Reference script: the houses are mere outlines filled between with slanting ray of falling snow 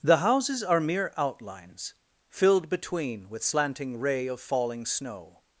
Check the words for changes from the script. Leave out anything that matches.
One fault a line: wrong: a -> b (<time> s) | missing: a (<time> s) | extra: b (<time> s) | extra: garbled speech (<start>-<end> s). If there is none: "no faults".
no faults